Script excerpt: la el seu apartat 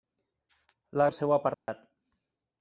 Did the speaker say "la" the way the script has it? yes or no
yes